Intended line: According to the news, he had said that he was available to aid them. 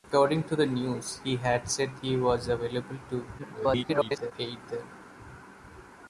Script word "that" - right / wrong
wrong